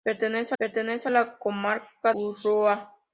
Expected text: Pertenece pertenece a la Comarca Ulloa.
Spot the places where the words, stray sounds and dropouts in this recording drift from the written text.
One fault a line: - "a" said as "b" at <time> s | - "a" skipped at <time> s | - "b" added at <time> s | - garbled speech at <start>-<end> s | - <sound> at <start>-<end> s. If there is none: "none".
none